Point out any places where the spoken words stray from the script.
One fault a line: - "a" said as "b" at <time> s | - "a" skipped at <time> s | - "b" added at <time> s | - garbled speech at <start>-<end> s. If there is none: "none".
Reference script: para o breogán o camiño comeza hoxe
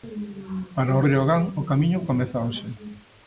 none